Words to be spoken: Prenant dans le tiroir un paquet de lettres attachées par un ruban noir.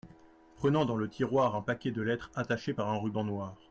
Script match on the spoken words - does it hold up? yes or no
yes